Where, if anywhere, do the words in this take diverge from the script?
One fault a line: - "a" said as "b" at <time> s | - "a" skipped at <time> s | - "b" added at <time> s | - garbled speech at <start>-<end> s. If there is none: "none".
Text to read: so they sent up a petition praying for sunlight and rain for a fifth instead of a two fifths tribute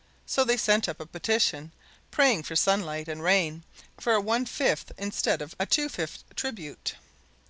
- "one" added at 4.2 s